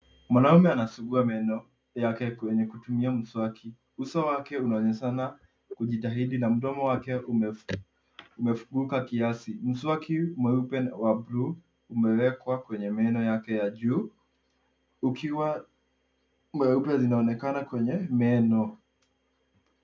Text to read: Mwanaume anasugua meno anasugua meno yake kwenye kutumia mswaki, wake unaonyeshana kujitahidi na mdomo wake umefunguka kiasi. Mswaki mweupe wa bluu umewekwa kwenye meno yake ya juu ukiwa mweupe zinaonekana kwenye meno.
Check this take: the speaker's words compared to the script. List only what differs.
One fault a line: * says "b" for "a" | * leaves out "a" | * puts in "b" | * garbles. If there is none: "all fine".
* leaves out "anasugua meno"
* puts in "uso"